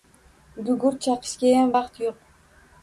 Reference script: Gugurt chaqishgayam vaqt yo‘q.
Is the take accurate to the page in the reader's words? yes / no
yes